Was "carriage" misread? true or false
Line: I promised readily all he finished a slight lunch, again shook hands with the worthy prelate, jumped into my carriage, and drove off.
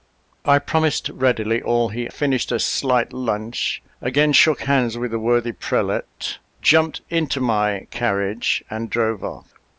false